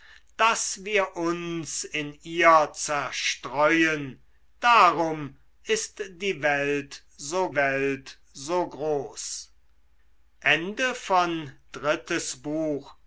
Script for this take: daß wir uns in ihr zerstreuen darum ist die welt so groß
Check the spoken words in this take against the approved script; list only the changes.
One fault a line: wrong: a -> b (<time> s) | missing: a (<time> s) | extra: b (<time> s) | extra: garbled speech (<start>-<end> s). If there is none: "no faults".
extra: welt so (7.5 s)